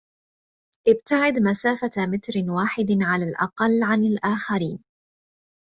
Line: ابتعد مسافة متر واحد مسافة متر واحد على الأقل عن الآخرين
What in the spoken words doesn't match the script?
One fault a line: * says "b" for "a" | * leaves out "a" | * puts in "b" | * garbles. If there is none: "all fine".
* leaves out "مسافة متر واحد"